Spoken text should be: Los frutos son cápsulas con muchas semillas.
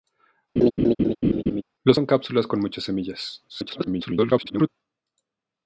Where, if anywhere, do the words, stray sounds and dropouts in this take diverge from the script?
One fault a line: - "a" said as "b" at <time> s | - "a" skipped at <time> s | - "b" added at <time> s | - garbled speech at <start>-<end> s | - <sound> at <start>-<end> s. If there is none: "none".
- laugh at 0.6-1.6 s
- "frutos" skipped at 2.0 s
- garbled speech at 3.5-4.7 s